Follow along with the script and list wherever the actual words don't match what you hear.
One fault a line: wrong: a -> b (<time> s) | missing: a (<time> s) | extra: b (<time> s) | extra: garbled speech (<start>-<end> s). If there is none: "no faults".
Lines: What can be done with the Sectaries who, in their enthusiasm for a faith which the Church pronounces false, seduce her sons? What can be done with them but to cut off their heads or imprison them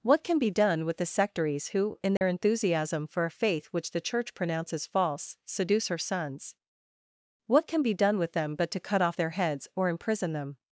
no faults